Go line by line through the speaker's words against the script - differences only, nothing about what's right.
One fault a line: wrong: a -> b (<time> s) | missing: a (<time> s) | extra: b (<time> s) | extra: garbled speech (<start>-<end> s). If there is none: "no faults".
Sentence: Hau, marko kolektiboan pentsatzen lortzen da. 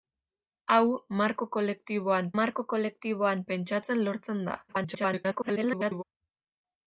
extra: marko kolektiboan (2.4 s)
extra: garbled speech (4.7-6.0 s)